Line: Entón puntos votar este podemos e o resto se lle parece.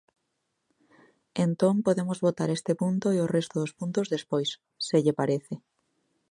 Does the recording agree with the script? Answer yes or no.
no